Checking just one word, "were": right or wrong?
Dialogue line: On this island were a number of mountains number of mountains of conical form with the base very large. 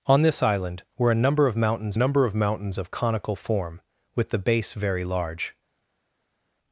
right